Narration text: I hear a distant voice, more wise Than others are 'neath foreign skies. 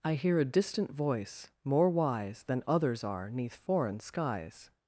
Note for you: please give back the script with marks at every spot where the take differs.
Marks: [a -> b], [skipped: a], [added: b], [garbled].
I hear a distant voice, more wise Than others are 'neath foreign skies.